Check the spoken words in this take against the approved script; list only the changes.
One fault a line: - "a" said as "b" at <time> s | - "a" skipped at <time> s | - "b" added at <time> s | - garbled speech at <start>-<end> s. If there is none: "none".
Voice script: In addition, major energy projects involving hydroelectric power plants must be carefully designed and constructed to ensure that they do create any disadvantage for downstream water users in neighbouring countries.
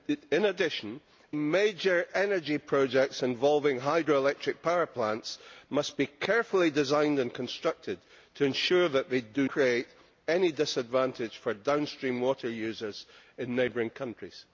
none